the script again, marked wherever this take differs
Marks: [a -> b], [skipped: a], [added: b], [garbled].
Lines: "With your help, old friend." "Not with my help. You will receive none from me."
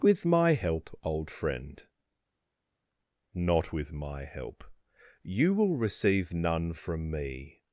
"With [your -> my] help, old friend." "Not with my help. You will receive none from me."